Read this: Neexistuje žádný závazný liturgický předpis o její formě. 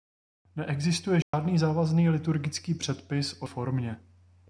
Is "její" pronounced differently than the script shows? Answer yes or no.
yes